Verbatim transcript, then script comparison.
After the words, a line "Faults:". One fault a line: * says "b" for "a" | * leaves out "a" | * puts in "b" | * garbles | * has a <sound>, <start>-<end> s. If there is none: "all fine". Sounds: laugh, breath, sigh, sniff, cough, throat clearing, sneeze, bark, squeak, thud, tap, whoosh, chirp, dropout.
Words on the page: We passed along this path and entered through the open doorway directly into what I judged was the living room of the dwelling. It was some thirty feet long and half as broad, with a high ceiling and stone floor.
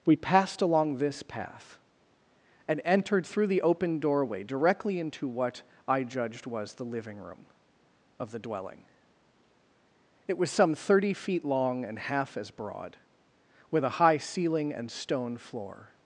We passed along this path and entered through the open doorway directly into what I judged was the living room of the dwelling. It was some thirty feet long and half as broad, with a high ceiling and stone floor.
Faults:
all fine